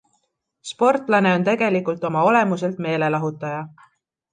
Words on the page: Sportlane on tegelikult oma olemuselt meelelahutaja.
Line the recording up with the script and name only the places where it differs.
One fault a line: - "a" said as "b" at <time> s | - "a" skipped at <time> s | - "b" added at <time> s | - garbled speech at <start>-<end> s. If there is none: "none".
none